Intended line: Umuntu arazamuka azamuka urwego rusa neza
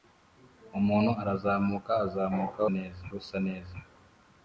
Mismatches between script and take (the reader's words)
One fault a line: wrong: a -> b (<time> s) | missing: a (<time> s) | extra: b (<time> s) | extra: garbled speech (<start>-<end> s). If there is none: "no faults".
wrong: urwego -> neza (2.8 s)